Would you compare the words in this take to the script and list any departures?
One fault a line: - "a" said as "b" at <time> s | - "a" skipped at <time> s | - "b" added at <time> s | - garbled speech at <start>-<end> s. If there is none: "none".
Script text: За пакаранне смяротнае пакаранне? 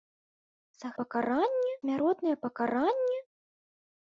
none